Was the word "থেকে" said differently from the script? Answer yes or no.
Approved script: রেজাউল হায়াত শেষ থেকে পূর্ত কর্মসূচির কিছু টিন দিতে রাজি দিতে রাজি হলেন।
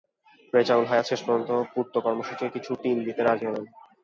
yes